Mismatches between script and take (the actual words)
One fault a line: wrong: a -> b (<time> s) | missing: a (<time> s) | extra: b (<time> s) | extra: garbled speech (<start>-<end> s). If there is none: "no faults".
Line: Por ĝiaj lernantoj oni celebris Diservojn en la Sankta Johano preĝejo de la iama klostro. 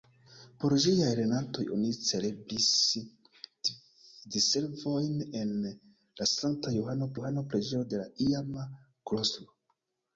extra: Johano (7.2 s)